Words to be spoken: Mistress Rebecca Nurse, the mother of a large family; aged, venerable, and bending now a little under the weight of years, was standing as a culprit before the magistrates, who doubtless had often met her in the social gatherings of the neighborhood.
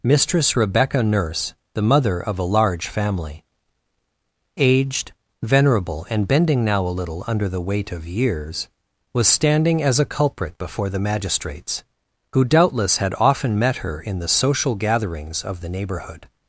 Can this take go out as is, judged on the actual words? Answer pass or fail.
pass